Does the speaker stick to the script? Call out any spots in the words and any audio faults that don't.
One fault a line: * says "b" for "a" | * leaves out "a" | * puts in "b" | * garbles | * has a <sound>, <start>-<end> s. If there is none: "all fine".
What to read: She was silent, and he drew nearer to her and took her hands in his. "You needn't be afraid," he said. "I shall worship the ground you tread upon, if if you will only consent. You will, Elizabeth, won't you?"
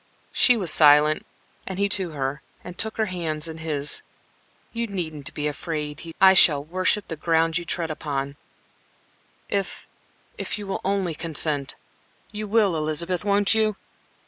* leaves out "drew nearer"
* leaves out "said"